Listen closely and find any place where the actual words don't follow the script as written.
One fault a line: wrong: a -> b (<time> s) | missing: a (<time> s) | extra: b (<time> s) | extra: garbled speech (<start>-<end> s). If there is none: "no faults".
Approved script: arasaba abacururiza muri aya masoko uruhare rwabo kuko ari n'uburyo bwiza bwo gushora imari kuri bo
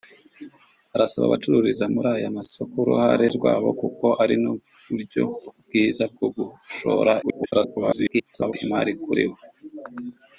extra: garbled speech (7.2-8.5 s)